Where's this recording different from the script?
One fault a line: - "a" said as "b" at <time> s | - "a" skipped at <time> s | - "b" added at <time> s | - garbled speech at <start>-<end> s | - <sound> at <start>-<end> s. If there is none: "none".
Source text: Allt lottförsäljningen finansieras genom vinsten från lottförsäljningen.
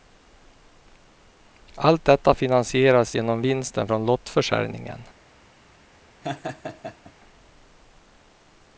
- "lottförsäljningen" said as "detta" at 2.0 s
- laugh at 6.2-7.1 s